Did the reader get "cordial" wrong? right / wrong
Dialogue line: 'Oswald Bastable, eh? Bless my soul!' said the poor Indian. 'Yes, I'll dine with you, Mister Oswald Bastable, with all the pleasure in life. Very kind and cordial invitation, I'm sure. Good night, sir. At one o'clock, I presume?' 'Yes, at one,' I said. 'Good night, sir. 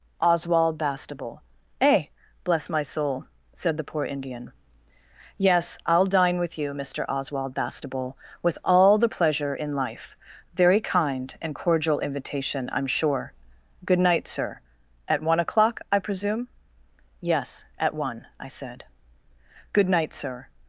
right